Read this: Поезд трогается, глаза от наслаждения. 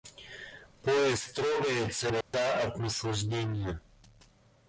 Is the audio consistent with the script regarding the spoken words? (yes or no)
yes